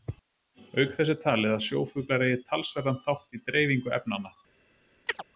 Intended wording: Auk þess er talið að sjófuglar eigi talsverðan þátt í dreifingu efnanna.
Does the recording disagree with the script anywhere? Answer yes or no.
no